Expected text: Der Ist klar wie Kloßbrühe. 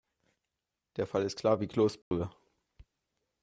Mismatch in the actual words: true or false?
true